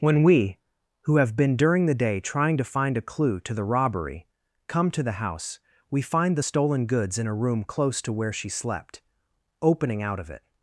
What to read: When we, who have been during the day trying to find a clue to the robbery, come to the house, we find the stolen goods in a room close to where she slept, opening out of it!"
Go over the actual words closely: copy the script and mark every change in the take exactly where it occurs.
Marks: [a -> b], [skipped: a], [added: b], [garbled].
When we, who have been during the day trying to find a clue to the robbery, come to the house, we find the stolen goods in a room close to where she slept, opening out of it!"